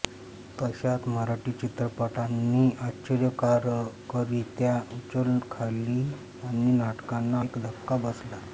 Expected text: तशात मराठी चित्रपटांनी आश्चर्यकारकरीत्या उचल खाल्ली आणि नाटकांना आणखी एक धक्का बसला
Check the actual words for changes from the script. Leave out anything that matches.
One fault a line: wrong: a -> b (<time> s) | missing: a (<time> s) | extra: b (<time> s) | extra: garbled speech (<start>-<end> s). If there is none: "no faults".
missing: आणखी (7.4 s)